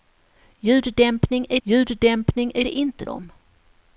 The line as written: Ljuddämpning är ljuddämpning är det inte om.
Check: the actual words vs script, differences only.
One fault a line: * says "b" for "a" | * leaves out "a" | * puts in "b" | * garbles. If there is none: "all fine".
all fine